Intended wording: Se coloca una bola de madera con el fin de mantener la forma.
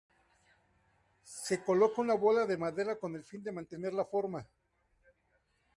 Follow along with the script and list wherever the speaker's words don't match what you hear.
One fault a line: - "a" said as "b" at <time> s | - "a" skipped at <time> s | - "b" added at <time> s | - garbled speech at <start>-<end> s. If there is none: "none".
none